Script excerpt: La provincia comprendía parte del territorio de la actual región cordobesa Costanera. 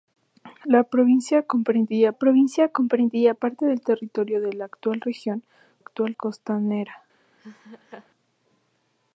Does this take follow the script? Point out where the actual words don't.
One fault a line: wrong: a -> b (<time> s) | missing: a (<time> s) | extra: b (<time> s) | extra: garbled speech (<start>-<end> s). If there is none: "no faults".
extra: provincia comprendía (2.1 s)
wrong: cordobesa -> actual (5.8 s)